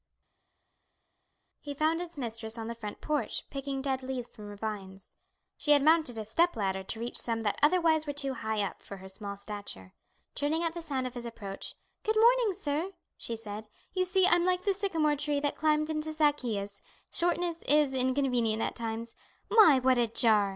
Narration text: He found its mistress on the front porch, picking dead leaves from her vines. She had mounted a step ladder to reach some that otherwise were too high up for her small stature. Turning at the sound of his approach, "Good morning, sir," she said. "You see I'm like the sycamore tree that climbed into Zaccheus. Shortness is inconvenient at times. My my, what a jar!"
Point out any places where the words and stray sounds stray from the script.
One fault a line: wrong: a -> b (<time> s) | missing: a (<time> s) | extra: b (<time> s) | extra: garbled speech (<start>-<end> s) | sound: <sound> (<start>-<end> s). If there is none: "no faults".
missing: my (19.8 s)